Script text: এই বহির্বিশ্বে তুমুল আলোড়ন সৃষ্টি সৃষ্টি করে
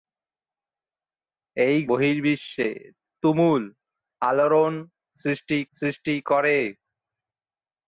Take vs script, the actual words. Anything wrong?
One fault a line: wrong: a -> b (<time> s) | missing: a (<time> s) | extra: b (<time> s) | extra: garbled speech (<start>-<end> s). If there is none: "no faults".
no faults